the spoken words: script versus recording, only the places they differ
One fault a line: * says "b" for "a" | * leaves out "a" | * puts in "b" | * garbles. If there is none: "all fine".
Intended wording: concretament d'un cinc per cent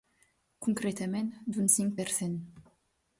all fine